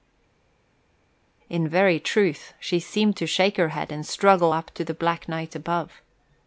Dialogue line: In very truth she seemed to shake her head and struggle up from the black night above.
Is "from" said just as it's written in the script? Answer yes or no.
no